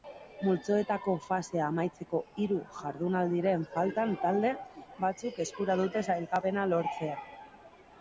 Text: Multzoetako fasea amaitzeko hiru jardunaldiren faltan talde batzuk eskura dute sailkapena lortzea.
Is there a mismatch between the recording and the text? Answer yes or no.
no